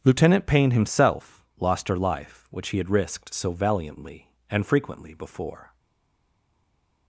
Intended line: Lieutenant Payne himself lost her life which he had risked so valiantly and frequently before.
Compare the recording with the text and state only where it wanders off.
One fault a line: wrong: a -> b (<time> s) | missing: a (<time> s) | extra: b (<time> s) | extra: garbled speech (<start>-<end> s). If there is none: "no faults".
no faults